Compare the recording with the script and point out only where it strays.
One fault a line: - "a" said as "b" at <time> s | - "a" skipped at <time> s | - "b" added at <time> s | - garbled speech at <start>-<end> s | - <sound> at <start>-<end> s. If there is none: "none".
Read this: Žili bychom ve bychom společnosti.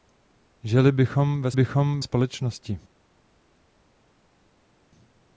none